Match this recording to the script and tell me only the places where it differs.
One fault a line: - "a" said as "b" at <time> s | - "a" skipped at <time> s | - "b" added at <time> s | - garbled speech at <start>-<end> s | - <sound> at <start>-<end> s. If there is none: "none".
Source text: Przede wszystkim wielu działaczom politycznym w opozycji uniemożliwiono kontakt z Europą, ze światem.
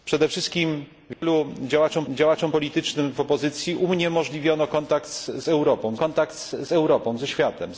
- dropout at 1.1-1.2 s
- "działaczom" added at 2.1 s
- "kontakt z Europą" added at 5.9 s